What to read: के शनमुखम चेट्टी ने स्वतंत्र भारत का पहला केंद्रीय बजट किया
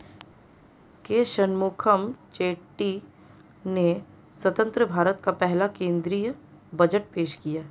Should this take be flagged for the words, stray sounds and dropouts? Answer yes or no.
yes